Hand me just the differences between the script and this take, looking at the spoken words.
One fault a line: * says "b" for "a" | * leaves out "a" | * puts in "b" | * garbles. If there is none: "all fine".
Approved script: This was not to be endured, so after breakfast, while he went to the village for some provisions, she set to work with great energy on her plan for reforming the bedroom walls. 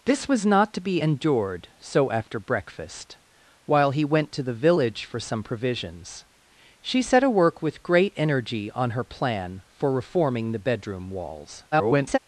* garbles